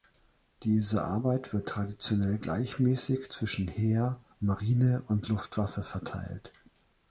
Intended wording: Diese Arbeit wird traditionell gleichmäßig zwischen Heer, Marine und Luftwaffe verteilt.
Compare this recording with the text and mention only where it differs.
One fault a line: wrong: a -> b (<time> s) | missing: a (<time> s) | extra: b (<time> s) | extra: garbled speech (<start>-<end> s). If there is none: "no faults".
no faults